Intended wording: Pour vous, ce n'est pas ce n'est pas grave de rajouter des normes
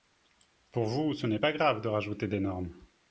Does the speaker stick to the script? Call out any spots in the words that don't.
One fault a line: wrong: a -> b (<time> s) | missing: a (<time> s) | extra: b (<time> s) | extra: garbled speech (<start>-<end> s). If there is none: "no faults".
missing: ce n'est pas (1.5 s)